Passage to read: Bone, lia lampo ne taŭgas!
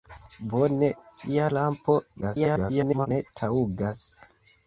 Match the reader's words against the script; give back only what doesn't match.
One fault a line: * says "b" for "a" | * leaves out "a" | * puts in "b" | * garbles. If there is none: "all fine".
* garbles